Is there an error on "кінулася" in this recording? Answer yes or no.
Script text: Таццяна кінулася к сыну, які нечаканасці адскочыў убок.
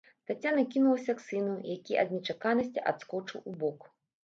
no